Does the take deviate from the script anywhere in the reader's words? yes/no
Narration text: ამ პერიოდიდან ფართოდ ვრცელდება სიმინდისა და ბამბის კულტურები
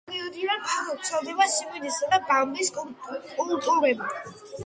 no